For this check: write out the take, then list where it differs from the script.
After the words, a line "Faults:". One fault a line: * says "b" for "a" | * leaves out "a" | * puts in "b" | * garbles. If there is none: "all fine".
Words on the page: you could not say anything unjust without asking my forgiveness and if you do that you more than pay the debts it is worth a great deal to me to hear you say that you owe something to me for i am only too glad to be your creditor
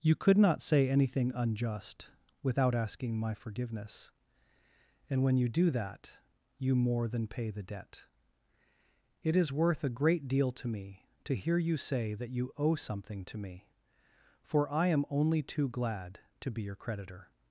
you could not say anything unjust without asking my forgiveness and when you do that you more than pay the debt it is worth a great deal to me to hear you say that you owe something to me for i am only too glad to be your creditor
Faults:
* says "when" for "if"
* says "debt" for "debts"